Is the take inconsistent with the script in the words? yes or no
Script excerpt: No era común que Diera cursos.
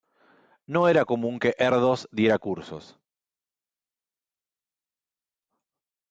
yes